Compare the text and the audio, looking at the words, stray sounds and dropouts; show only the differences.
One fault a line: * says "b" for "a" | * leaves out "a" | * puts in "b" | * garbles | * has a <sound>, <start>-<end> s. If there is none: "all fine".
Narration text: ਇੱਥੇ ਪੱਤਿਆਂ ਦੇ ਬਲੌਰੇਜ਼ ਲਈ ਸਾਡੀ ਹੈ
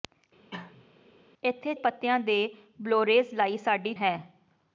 * has a cough, 0.5-0.9 s